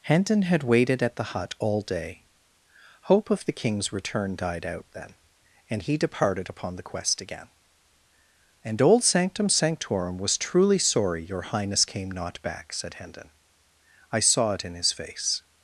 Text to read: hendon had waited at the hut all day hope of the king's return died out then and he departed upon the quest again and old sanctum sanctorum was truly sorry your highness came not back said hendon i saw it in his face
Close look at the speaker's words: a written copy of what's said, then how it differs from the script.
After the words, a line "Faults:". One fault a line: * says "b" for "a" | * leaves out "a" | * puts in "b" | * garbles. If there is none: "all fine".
hendon had waited at the hut all day hope of the king's return died out then and he departed upon the quest again and old sanctum sanctorum was truly sorry your highness came not back said hendon i saw it in his face
Faults:
all fine